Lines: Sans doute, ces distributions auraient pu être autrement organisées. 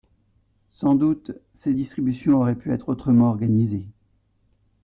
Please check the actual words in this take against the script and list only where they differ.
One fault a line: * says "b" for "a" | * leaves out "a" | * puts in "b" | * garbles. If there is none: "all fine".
all fine